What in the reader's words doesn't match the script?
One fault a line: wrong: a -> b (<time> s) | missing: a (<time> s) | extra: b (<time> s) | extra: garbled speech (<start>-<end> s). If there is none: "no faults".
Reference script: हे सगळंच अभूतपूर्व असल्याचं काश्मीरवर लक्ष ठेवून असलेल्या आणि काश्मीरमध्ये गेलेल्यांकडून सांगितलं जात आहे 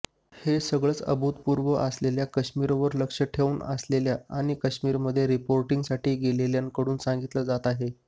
extra: रिपोर्टिंगसाठी (5.3 s)